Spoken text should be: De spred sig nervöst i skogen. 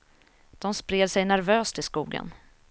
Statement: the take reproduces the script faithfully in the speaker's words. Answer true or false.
true